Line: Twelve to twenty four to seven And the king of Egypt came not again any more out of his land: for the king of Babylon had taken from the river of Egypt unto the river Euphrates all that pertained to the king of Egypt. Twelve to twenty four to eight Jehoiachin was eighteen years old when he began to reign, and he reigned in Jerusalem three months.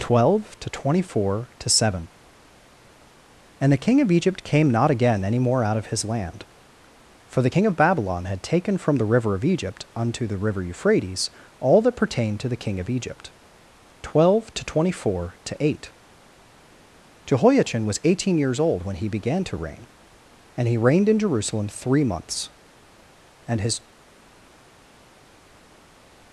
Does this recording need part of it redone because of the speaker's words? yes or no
yes